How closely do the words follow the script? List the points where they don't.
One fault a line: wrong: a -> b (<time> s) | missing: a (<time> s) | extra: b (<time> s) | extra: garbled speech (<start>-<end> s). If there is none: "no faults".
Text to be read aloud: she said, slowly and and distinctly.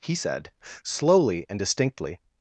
wrong: she -> he (0.0 s)
missing: and (1.6 s)